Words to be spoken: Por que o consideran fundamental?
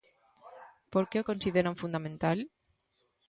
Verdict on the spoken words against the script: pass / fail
pass